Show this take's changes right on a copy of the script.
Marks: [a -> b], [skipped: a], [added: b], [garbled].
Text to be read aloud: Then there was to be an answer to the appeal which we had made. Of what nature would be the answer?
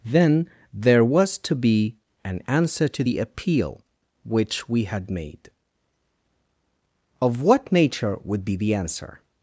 Then there was to be an answer to the appeal which we had made. Of what nature would be the answer?